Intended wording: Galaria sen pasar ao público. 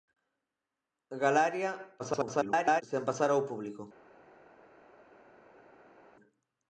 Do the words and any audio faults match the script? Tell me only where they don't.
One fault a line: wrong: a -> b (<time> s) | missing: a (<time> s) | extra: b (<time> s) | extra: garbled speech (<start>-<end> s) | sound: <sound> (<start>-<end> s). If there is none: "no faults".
extra: garbled speech (2.0-2.8 s)